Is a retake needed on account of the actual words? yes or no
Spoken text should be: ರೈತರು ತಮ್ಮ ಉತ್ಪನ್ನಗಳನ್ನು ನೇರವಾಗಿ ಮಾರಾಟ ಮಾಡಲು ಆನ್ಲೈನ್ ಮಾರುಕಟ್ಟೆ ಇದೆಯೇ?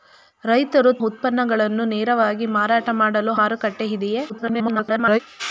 yes